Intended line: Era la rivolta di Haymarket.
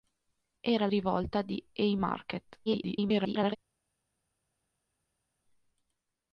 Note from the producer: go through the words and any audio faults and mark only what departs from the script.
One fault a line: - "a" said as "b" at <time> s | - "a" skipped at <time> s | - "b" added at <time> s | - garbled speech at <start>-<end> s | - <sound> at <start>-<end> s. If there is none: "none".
- "la" skipped at 0.9 s
- garbled speech at 2.7-3.6 s